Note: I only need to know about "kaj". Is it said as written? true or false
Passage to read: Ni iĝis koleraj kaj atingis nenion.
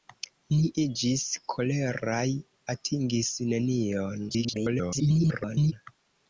false